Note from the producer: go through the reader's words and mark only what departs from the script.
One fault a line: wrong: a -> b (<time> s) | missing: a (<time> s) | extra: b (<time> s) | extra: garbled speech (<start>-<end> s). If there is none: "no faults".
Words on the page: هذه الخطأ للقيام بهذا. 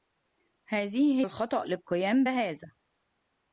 no faults